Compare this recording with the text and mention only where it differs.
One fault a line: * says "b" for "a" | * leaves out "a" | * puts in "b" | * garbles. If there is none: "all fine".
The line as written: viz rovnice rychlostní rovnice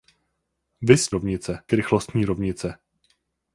all fine